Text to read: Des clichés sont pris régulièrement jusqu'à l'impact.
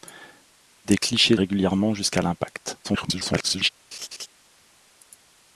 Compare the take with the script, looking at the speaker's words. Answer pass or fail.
fail